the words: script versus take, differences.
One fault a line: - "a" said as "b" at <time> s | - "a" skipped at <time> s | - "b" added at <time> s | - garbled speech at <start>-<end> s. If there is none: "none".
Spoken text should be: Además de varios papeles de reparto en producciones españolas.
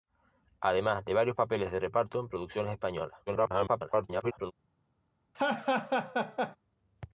- garbled speech at 3.3-4.5 s